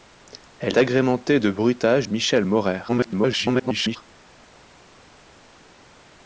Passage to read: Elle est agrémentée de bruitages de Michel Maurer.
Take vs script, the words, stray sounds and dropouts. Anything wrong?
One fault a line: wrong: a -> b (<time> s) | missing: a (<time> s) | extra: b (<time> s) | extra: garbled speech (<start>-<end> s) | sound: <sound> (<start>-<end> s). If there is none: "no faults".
missing: est (0.8 s)
missing: de (2.1 s)
extra: garbled speech (2.9-4.0 s)